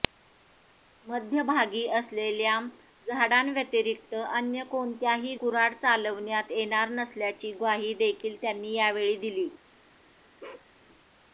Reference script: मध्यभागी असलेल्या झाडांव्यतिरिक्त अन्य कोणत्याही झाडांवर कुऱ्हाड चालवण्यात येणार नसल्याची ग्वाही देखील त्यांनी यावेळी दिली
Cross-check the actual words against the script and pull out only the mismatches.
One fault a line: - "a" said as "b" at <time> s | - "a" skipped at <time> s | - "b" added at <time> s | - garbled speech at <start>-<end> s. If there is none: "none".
- "झाडांवर" skipped at 5.3 s